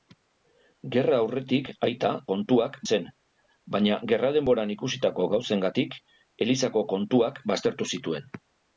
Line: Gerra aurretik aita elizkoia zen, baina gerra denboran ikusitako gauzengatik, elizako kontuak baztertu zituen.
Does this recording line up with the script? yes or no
no